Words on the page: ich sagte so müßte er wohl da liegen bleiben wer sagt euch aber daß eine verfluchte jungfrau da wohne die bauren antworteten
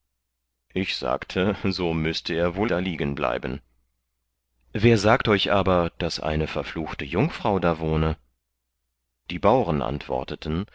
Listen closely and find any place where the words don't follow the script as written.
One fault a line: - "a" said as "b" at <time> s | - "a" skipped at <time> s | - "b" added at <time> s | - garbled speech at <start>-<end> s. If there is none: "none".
none